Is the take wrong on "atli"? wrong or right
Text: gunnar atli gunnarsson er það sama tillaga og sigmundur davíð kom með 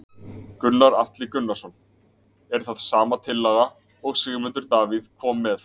right